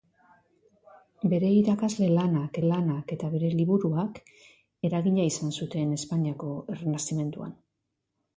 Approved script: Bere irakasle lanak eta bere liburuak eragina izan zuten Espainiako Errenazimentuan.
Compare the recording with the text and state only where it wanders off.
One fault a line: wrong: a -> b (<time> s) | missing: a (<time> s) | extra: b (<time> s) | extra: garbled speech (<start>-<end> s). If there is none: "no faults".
extra: lanak (2.7 s)